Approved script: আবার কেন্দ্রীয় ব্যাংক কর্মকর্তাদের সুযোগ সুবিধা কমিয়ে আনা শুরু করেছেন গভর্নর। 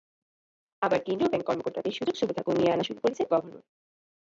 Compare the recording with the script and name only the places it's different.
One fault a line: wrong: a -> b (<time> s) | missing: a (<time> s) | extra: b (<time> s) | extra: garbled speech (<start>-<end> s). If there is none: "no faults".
no faults